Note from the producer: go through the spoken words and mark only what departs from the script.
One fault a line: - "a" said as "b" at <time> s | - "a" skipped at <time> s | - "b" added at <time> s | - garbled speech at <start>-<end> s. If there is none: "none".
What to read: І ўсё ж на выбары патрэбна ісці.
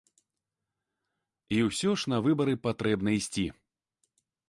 none